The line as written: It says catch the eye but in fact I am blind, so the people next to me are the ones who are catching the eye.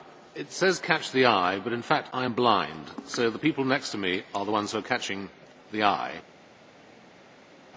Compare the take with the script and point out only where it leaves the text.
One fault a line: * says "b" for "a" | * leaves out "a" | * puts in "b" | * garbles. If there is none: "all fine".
all fine